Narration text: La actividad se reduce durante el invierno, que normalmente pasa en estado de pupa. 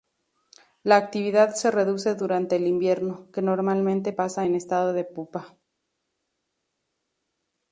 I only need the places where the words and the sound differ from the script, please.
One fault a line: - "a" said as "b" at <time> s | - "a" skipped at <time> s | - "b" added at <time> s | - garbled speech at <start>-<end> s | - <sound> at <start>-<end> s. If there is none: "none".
none